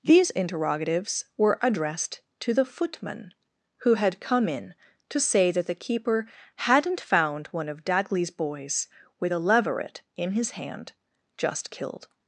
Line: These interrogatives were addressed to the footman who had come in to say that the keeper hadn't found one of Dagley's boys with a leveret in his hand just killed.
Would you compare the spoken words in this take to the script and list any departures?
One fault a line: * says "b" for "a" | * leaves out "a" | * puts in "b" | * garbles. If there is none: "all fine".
all fine